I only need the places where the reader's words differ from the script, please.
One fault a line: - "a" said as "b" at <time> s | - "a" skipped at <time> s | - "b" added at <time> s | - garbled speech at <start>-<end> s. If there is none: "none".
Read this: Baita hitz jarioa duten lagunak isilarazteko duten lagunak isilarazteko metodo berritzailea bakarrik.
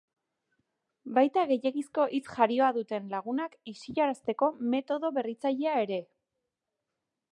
- "gehiegizko" added at 1.5 s
- "duten lagunak isilarazteko" skipped at 4.5 s
- "bakarrik" said as "ere" at 5.9 s